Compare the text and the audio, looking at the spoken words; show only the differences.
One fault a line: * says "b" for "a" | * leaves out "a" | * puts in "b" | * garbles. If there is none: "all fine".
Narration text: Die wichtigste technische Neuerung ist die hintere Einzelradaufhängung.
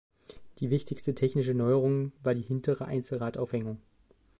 * says "war" for "ist"